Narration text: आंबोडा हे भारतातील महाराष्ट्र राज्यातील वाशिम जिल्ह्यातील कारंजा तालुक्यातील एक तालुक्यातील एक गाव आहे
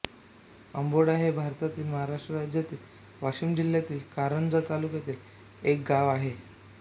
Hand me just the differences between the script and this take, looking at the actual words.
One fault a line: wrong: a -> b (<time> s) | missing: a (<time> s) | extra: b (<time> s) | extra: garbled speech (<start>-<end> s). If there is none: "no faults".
missing: तालुक्यातील एक (5.8 s)